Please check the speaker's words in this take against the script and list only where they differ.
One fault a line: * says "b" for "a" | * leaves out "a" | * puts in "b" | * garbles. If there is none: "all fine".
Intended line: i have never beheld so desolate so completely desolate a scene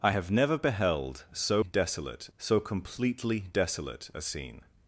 all fine